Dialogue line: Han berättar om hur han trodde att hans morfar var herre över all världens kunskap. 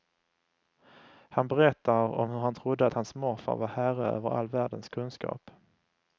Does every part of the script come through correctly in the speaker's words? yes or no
yes